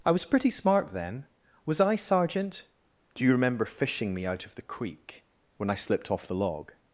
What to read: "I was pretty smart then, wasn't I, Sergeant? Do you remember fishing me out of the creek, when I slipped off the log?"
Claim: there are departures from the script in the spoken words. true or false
true